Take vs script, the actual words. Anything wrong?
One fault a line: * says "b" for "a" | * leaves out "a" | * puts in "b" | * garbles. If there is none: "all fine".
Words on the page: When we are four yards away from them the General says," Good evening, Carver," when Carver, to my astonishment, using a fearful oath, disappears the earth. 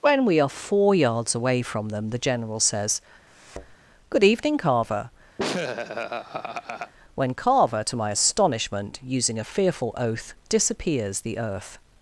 all fine